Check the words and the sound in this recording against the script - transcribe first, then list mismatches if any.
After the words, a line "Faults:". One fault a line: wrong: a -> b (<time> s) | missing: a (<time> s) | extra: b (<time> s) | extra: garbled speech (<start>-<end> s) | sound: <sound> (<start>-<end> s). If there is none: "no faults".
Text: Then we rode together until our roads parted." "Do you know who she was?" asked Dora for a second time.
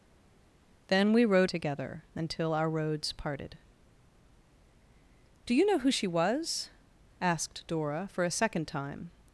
Then we rode together until our roads parted." "Do you know who she was?" asked Dora for a second time.
Faults:
no faults